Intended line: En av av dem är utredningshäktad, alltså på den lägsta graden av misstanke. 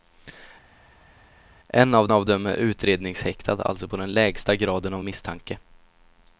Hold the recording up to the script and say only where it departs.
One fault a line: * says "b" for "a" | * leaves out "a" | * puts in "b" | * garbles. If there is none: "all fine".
all fine